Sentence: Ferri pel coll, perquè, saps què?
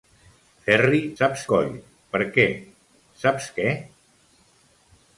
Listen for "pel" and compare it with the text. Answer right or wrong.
wrong